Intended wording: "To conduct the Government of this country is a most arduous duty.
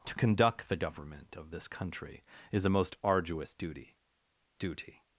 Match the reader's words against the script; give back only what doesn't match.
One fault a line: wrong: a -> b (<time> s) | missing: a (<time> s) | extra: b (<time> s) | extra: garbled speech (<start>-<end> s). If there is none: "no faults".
extra: duty (4.6 s)